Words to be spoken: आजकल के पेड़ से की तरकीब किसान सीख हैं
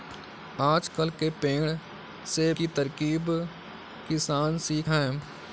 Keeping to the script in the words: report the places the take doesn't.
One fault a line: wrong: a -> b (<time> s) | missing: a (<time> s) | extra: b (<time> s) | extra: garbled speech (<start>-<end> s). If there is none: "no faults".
no faults